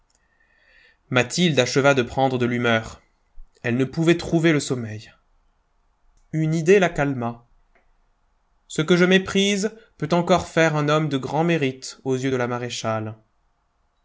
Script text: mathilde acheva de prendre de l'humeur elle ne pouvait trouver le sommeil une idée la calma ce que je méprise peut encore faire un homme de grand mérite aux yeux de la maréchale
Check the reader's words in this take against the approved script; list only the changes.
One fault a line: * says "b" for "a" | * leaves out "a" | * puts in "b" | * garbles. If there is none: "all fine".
all fine